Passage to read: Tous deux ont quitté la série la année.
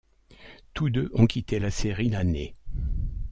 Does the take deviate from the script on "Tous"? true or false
false